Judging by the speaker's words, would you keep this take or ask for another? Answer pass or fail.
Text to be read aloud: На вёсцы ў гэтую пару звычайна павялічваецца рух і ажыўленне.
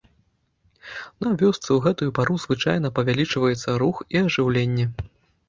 pass